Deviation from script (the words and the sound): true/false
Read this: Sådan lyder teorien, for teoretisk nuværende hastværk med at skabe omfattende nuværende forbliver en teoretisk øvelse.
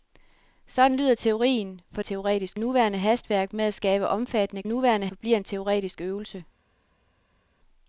false